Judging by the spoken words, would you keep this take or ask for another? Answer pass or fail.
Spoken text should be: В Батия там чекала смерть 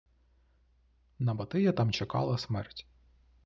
fail